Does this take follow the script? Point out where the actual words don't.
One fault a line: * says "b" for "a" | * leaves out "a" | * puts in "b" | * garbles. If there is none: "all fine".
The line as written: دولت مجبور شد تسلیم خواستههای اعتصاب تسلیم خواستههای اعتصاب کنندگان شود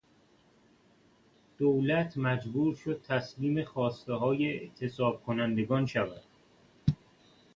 * leaves out "تسلیم خواستههای اعتصاب"